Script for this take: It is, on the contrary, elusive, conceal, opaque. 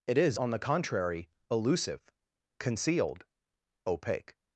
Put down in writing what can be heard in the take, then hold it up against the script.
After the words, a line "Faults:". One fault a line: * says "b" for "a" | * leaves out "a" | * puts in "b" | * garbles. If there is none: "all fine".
It is, on the contrary, elusive, concealed, opaque.
Faults:
* says "concealed" for "conceal"